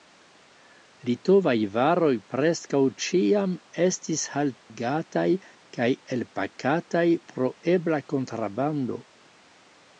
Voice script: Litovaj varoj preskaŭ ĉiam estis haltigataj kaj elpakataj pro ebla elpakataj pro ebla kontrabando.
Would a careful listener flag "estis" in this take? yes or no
no